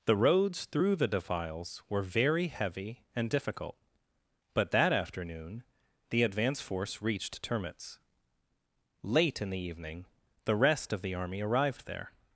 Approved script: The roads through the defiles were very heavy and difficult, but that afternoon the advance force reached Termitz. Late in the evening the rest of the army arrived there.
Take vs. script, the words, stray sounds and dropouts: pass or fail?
pass